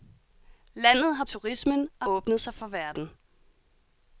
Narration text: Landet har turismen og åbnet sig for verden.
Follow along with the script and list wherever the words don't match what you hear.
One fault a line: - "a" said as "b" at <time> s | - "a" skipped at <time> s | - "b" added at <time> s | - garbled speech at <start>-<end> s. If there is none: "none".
none